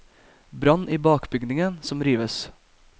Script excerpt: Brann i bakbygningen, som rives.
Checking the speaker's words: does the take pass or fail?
pass